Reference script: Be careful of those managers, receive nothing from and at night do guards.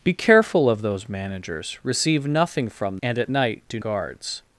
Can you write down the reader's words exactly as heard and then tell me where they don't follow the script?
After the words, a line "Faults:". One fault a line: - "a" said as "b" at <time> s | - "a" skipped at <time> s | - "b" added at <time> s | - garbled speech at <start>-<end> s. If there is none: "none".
Be careful of those managers, receive nothing from and at night do guards.
Faults:
none